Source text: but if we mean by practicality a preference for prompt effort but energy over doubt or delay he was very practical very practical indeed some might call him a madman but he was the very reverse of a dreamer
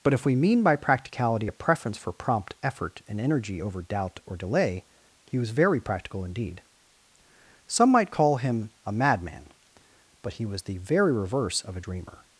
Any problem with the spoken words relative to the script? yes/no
yes